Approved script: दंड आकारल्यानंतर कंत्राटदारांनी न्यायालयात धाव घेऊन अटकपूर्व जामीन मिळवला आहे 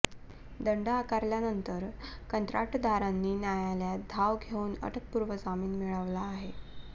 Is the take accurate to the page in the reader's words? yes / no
yes